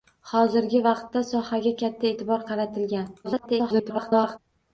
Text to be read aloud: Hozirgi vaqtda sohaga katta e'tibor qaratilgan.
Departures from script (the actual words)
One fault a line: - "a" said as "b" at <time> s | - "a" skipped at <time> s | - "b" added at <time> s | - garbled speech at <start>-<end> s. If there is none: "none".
- garbled speech at 3.2-4.4 s